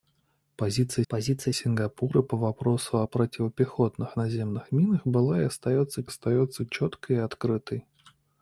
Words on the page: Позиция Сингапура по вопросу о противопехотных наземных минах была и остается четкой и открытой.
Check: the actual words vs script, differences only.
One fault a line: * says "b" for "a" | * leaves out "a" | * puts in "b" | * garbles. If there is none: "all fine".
* puts in "позиция"
* puts in "остается"